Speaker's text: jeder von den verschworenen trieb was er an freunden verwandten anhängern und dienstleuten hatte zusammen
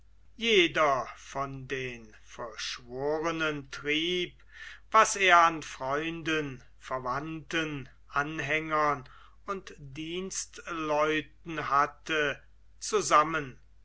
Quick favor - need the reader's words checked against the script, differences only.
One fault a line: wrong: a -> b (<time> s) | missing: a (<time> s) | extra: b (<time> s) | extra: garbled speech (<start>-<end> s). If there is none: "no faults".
no faults